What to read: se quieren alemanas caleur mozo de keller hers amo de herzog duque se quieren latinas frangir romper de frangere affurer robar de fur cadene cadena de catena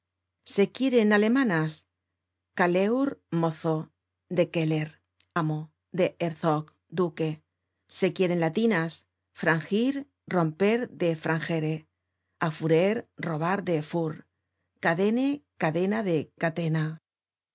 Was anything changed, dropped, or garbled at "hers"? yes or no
yes